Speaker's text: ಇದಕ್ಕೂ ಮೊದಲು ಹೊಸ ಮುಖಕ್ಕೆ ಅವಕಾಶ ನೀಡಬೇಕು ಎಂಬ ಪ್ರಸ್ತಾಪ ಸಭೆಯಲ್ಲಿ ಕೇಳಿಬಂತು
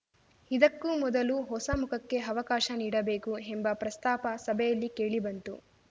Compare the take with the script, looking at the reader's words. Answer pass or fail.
pass